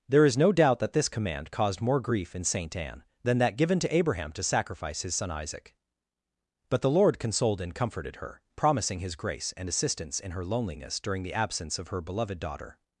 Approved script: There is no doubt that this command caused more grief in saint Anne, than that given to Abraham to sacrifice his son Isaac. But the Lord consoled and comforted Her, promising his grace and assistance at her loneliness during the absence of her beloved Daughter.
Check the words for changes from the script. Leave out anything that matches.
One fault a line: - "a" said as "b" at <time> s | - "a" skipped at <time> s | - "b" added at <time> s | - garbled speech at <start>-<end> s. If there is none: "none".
- "at" said as "in" at 10.2 s